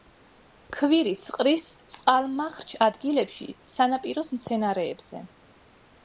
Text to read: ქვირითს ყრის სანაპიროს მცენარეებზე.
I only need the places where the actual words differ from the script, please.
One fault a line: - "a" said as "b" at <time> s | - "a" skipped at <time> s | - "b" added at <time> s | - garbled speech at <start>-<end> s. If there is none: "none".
- "წყალმარჩხ ადგილებში" added at 1.9 s